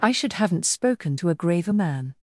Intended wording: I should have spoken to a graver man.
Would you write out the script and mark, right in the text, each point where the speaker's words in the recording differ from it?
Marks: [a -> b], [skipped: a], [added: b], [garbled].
I should [have -> haven't] spoken to a graver man.